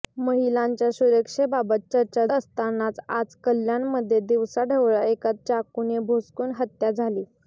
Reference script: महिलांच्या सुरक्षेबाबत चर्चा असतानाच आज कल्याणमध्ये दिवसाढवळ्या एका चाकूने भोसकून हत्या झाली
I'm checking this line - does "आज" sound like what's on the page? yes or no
yes